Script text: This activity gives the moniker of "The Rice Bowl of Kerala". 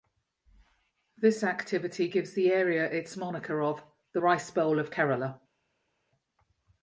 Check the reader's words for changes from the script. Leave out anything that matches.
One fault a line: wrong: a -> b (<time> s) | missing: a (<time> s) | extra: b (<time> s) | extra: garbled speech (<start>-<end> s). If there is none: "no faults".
extra: area its (2.5 s)